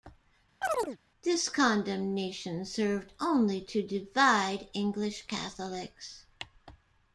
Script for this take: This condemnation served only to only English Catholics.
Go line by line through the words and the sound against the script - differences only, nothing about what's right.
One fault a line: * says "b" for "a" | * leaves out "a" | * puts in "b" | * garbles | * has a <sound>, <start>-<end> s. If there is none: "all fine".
* has a chirp, 0.6-1.0 s
* says "divide" for "only"